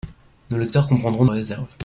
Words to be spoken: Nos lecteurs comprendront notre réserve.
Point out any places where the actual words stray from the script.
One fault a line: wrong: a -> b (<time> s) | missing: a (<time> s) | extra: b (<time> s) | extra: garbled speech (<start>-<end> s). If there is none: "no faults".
missing: notre (1.2 s)